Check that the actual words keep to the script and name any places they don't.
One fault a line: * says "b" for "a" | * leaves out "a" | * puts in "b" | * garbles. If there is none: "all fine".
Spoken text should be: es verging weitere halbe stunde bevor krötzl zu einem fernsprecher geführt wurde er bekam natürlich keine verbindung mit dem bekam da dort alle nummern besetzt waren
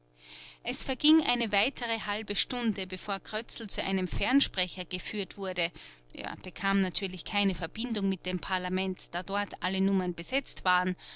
* puts in "eine"
* says "parlament" for "bekam"